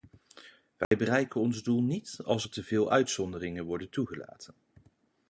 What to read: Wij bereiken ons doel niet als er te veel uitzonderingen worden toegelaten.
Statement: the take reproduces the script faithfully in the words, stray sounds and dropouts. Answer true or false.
false